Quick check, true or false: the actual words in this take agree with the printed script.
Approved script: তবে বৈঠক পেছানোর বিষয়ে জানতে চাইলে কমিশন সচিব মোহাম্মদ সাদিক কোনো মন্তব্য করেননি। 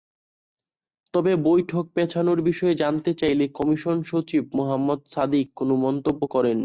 true